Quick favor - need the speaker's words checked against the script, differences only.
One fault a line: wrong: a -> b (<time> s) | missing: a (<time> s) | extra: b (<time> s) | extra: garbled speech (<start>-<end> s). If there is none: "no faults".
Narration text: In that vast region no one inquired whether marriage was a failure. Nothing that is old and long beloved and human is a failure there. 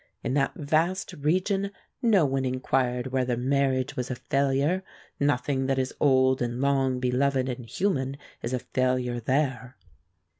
no faults